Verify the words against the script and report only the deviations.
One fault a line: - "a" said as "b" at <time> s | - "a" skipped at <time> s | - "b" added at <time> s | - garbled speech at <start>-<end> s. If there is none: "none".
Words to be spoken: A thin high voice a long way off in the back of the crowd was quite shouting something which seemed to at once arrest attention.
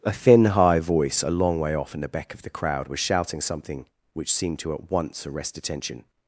- "quite" skipped at 3.0 s